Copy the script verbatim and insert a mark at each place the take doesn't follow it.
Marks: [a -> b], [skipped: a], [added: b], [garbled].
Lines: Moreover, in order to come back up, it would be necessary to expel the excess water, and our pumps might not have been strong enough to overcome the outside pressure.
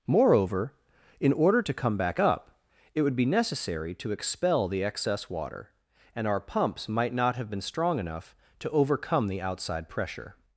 Moreover, in order to come back up, it would be necessary to expel the excess water, and our pumps might not have been strong enough to overcome the outside pressure.